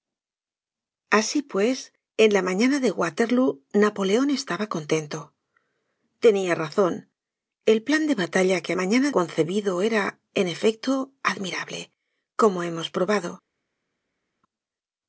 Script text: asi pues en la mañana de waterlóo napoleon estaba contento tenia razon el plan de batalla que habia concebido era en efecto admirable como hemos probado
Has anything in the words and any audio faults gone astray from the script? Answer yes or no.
yes